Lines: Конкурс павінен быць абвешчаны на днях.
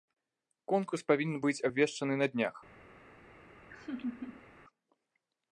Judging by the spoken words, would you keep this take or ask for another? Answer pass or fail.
pass